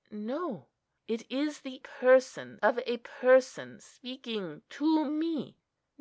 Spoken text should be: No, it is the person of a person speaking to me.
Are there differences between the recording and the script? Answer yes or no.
no